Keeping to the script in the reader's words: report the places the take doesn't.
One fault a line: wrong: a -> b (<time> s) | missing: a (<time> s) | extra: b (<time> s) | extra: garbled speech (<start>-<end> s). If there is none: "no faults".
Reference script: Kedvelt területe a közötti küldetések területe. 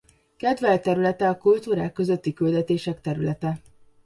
extra: kultúrák (1.4 s)